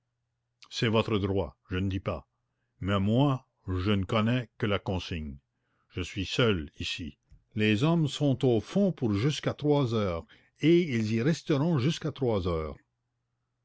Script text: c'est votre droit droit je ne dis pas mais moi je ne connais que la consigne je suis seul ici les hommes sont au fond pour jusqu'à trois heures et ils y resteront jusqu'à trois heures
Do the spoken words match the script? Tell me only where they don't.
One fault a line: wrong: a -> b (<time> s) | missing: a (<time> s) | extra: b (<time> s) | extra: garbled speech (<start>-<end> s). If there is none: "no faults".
missing: droit (1.6 s)